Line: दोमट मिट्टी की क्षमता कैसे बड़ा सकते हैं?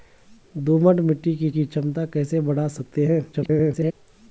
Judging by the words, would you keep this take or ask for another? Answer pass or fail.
fail